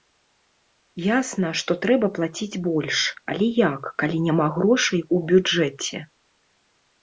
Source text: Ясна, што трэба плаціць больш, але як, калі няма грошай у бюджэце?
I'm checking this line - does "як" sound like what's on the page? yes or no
yes